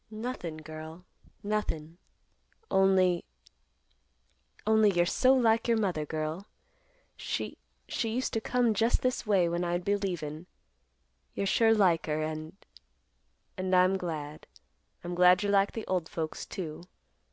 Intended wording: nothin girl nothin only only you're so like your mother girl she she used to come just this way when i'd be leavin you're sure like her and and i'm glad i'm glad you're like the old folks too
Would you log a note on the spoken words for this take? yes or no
no